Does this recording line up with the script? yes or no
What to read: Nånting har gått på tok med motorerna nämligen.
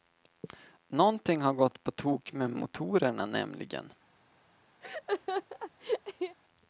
yes